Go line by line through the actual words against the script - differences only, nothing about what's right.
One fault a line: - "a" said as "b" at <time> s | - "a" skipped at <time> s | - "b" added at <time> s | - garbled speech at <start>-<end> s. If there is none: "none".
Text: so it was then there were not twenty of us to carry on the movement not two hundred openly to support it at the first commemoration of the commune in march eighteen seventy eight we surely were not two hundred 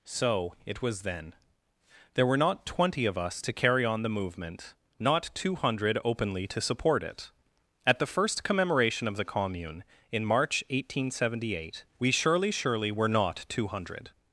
- "surely" added at 12.5 s